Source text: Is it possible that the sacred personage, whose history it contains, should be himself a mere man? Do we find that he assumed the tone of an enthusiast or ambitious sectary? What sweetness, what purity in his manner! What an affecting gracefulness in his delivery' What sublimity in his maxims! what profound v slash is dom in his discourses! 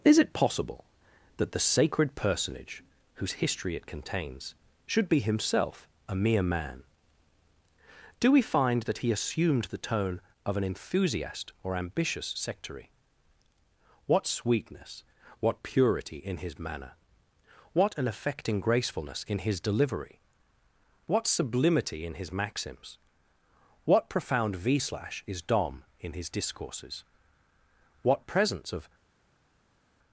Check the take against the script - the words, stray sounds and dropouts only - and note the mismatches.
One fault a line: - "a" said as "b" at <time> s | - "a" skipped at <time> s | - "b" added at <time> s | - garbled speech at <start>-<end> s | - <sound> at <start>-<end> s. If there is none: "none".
- "What presence of" added at 28.0 s